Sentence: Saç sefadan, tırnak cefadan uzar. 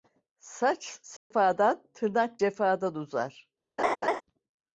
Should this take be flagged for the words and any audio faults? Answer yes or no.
yes